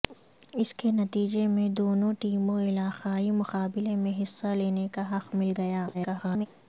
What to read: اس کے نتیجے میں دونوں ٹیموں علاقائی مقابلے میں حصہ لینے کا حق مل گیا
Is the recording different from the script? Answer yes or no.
yes